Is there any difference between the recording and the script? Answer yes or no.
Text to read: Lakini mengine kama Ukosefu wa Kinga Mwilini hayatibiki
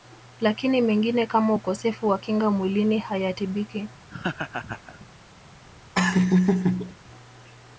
no